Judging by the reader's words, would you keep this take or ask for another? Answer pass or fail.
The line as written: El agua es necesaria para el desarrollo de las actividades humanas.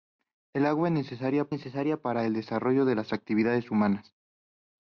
fail